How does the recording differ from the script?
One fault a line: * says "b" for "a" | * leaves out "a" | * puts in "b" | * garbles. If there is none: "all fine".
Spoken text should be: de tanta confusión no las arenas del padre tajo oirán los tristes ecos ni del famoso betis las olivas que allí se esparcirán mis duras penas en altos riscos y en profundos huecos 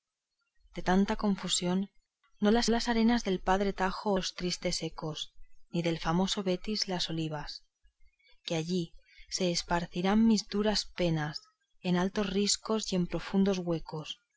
* puts in "las"
* leaves out "oirán"